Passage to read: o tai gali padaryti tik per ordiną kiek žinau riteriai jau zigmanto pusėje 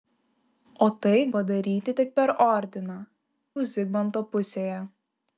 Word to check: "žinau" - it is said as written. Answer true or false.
false